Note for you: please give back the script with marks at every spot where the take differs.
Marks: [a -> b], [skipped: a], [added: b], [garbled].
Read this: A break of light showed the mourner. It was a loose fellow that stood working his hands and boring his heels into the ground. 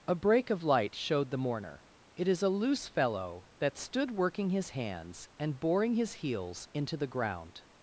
A break of light showed the mourner. It [was -> is] a loose fellow that stood working his hands and boring his heels into the ground.